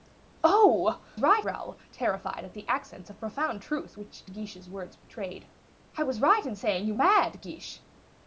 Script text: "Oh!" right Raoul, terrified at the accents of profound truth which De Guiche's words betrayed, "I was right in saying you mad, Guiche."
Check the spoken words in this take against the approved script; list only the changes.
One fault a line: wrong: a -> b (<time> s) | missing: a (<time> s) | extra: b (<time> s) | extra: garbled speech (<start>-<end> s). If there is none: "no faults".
no faults